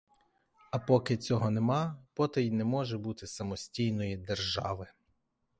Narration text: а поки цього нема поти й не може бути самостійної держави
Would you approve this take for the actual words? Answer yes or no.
yes